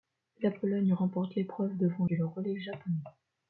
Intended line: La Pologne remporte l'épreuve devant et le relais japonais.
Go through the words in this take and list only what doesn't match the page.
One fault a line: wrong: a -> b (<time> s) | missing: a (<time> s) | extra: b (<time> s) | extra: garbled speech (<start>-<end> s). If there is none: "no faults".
no faults